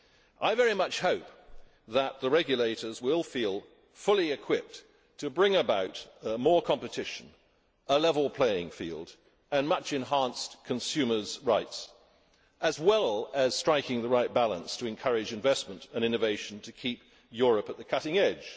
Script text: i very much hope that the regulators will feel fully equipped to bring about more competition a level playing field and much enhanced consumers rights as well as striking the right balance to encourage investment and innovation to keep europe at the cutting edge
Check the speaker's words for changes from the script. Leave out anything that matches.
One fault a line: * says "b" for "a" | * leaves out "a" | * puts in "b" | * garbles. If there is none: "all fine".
all fine